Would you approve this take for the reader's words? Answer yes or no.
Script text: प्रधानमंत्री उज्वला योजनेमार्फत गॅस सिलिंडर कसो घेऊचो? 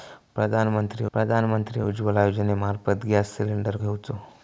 no